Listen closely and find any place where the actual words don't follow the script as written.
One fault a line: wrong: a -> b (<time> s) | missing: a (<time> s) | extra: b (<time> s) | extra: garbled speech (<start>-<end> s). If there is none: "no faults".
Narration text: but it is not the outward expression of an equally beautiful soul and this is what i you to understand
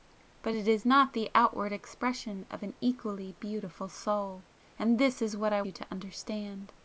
no faults